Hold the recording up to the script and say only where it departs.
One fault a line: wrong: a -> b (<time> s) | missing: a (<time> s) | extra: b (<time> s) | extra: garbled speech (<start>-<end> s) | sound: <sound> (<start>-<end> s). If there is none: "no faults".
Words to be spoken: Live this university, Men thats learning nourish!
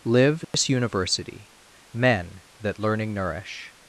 sound: dropout (0.4-0.5 s)
wrong: thats -> that (2.6 s)